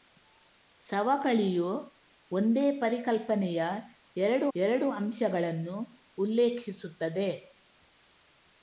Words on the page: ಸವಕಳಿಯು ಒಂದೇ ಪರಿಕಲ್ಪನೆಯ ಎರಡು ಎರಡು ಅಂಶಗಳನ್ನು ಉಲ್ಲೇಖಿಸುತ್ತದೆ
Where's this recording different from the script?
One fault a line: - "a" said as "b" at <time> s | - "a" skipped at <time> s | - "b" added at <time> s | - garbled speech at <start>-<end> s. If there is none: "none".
none